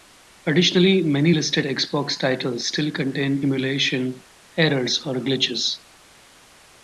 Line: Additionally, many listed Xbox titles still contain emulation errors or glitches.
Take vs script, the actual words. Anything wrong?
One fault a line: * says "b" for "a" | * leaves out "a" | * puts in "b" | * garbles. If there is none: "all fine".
all fine